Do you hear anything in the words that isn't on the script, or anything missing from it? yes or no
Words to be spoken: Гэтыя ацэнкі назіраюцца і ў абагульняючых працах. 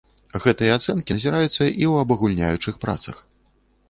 no